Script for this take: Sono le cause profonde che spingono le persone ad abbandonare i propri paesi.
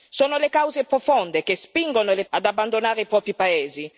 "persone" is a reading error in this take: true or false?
true